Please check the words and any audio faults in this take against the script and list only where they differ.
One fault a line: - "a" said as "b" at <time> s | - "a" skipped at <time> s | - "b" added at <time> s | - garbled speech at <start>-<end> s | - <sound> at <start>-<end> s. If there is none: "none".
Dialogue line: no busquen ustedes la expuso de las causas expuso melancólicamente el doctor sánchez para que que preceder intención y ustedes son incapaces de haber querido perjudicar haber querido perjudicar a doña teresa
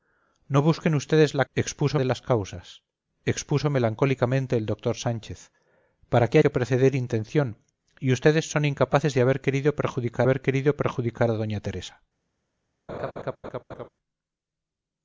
- laugh at 12.9-13.9 s